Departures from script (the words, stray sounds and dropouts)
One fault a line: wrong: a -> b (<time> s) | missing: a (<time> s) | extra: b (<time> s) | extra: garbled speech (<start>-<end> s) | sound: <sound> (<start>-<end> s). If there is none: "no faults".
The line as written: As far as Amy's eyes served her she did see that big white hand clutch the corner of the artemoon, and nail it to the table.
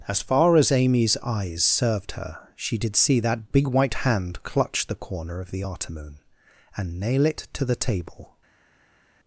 no faults